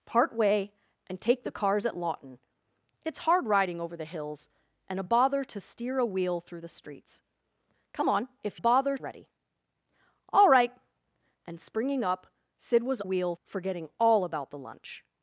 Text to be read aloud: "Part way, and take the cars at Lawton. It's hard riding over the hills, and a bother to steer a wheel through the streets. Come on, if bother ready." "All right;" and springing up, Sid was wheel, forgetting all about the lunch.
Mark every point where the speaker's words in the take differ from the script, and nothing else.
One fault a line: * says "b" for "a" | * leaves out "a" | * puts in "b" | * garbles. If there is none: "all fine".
all fine